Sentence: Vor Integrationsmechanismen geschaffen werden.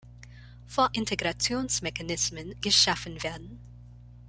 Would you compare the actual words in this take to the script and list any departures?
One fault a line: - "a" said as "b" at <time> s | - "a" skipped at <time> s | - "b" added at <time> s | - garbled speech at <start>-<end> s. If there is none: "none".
none